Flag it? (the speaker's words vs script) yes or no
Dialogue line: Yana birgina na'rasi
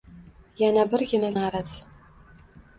no